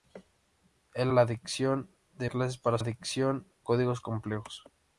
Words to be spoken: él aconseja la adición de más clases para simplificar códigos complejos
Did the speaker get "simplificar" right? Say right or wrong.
wrong